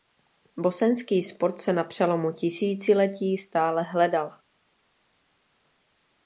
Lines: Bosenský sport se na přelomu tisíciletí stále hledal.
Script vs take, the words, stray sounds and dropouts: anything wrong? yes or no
no